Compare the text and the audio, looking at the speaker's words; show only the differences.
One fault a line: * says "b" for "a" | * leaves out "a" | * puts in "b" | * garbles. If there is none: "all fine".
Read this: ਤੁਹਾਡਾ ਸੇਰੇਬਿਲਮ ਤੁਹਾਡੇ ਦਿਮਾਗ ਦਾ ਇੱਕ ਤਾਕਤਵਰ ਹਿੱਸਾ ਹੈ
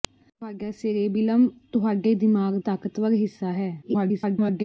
* leaves out "ਦਾ ਇੱਕ"
* garbles